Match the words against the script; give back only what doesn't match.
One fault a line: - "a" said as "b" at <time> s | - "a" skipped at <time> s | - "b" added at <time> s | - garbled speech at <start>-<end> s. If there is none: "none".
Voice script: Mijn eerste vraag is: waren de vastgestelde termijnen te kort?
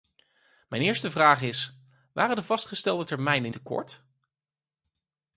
none